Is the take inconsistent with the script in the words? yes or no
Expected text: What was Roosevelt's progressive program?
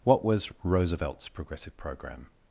no